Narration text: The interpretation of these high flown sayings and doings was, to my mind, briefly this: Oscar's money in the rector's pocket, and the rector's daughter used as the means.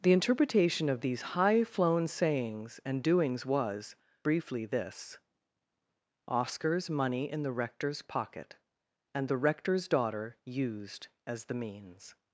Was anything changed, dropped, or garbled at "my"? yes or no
yes